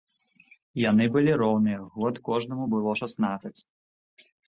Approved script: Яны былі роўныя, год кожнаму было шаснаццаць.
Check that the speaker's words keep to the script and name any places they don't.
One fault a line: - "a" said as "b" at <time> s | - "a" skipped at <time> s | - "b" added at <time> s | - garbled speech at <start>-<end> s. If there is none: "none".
none